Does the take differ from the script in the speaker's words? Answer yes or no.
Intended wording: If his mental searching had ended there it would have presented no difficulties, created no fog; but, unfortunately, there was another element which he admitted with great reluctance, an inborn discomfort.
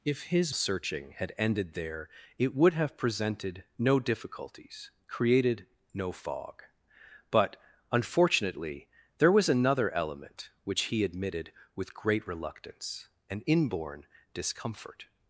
yes